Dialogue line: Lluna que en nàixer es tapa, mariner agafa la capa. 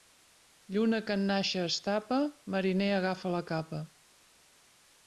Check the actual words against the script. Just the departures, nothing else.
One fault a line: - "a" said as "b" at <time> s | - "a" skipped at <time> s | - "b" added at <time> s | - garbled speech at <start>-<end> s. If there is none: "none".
none